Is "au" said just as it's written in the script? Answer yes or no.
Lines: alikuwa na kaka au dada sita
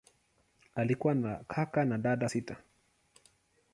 no